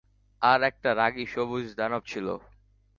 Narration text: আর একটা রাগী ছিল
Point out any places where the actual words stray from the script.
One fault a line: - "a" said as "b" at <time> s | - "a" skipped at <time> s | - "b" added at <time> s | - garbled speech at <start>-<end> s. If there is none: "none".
- "সবুজ দানব" added at 1.3 s